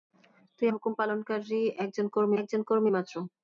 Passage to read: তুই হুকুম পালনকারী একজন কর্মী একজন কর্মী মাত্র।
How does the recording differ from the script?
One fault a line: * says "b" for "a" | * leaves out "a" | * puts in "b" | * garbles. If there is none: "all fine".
all fine